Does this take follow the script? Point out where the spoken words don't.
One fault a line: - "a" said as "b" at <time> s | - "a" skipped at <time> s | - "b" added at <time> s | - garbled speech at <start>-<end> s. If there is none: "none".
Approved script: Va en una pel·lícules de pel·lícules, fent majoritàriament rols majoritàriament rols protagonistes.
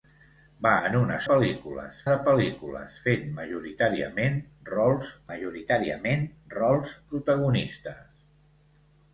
none